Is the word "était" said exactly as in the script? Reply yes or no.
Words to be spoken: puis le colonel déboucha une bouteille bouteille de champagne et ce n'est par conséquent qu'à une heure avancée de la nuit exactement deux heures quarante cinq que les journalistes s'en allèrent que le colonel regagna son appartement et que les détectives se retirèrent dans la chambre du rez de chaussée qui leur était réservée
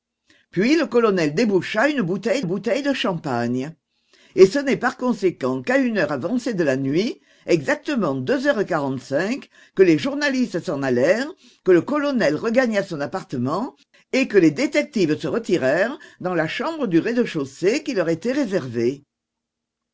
yes